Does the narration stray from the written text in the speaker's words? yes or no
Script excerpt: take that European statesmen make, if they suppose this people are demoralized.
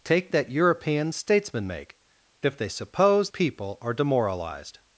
yes